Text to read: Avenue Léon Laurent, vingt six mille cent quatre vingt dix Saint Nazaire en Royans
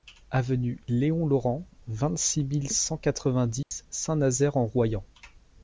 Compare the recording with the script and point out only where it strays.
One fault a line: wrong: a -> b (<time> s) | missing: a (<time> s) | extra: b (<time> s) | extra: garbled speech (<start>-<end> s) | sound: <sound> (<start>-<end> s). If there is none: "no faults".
sound: dropout (3.6-3.7 s)